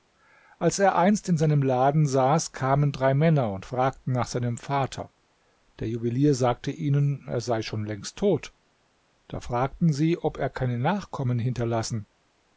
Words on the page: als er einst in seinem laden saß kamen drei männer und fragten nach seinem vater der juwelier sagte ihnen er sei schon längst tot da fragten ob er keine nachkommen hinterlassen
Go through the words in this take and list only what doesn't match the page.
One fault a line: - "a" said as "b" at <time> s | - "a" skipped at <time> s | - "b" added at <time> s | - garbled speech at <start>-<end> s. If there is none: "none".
- "sie" added at 9.9 s